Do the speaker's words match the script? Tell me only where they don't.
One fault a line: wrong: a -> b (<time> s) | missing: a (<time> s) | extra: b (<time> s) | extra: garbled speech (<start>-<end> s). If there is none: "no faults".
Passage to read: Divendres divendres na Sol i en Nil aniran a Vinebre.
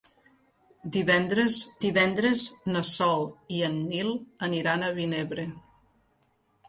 no faults